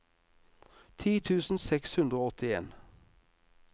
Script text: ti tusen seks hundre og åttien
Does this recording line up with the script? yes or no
yes